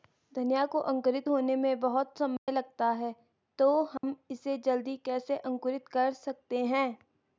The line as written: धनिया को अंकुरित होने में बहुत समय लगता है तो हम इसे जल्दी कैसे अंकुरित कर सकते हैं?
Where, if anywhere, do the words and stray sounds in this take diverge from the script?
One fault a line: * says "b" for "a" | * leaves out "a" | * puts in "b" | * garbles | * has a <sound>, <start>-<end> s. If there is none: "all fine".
* has a dropout, 2.4-2.5 s
* has a dropout, 4.0-4.0 s